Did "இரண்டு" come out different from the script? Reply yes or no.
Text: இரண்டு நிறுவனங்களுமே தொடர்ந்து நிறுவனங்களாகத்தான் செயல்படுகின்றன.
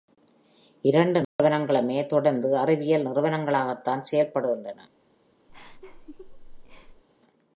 no